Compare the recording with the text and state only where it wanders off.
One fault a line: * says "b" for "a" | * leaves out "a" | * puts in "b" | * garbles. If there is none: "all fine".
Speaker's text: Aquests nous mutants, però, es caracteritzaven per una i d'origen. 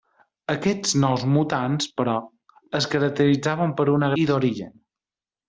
all fine